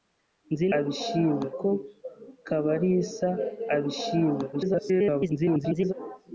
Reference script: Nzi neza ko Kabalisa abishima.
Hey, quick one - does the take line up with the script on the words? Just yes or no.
no